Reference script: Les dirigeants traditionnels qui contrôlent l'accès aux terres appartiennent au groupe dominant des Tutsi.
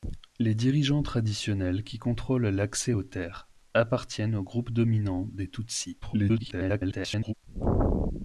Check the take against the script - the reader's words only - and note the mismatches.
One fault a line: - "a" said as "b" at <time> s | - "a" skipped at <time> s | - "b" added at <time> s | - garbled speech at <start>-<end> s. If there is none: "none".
- garbled speech at 6.0-7.3 s